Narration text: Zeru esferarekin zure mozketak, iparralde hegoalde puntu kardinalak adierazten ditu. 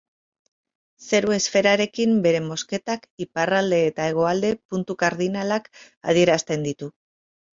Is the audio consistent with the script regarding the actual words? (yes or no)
no